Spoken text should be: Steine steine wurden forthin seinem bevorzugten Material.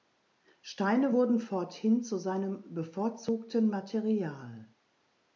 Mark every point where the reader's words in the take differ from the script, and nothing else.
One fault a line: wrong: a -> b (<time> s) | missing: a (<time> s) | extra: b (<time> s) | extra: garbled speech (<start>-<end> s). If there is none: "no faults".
missing: steine (1.1 s)
extra: zu (2.0 s)